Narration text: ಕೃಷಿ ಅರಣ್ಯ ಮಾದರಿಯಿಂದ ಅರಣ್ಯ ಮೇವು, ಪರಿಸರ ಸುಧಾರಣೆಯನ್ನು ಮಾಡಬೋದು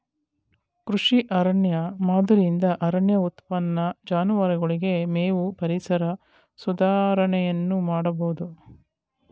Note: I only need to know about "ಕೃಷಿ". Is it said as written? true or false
true